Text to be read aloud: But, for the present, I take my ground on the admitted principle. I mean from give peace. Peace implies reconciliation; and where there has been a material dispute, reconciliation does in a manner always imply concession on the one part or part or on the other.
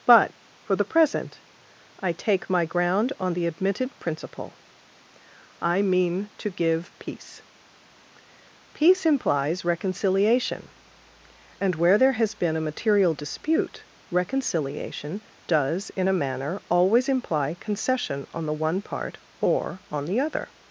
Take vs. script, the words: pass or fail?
fail